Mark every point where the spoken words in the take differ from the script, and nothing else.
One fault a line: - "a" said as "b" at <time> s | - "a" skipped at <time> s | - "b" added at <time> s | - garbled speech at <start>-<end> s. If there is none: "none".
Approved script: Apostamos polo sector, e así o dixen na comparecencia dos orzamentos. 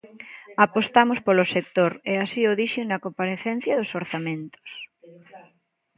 none